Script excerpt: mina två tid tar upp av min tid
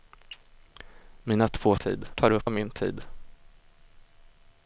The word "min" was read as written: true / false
true